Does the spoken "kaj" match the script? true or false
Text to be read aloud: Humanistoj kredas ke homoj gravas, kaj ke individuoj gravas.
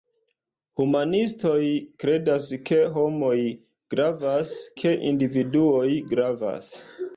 false